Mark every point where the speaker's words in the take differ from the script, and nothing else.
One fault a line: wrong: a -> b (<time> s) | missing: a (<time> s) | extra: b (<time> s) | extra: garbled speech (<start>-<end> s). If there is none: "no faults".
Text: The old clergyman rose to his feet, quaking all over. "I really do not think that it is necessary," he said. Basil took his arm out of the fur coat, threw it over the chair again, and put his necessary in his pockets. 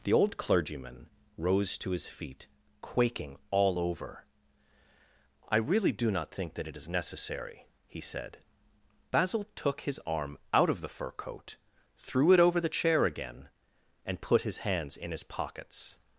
wrong: necessary -> hands (14.6 s)